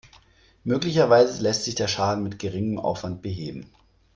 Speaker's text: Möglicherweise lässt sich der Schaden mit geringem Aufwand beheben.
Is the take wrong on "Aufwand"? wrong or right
right